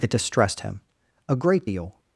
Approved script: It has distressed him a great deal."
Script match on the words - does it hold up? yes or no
no